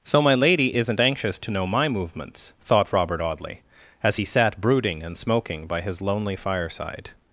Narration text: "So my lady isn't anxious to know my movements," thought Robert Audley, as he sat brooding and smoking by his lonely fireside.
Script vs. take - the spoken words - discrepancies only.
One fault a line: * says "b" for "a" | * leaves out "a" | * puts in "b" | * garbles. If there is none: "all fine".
all fine